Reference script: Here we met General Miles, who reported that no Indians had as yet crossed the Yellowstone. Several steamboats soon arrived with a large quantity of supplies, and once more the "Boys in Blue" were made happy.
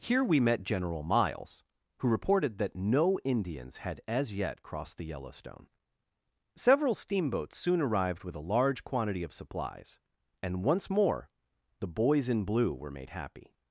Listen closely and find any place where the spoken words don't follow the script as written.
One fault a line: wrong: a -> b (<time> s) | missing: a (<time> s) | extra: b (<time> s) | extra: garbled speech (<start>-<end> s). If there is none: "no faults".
no faults